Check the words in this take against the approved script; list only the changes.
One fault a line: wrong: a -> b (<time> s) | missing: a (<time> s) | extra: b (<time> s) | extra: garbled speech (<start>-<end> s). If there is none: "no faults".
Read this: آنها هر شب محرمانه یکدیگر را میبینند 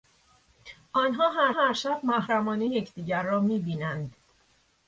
extra: هر (1.5 s)